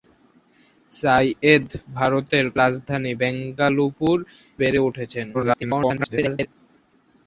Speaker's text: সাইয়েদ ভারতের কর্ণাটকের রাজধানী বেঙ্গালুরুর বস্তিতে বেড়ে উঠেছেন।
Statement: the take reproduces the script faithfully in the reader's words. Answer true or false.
false